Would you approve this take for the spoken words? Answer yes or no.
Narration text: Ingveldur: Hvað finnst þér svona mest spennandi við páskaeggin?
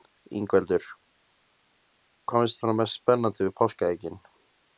no